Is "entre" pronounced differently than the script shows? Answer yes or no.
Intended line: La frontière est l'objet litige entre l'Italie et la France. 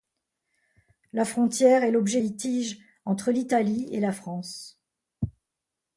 no